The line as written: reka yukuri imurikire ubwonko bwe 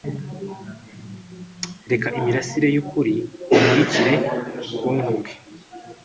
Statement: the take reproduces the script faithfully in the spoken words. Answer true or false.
false